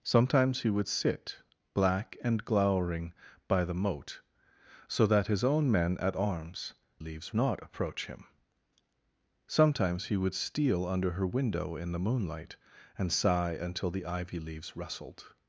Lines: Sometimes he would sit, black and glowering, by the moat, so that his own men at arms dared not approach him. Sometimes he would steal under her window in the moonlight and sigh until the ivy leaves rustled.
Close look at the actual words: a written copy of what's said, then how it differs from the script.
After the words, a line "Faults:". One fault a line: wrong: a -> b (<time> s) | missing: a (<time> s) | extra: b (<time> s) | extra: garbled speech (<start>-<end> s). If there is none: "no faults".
Sometimes he would sit, black and glowering, by the moat, so that his own men at arms leaves not approach him. Sometimes he would steal under her window in the moonlight and sigh until the ivy leaves rustled.
Faults:
wrong: dared -> leaves (7.0 s)